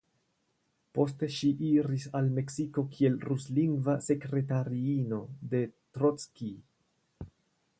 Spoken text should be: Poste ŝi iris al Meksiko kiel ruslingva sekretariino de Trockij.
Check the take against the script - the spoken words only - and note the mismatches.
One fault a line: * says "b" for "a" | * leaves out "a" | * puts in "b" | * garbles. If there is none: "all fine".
all fine